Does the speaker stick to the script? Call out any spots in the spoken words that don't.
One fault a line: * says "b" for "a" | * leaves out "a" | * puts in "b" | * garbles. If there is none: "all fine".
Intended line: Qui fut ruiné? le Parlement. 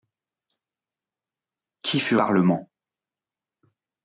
* leaves out "ruiné le"